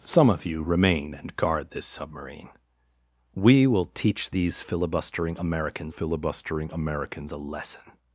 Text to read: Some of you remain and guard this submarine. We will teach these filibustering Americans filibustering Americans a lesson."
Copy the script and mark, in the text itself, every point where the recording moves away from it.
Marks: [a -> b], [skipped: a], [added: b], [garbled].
Some of you remain and guard this submarine. We will teach these filibustering Americans filibustering Americans a lesson."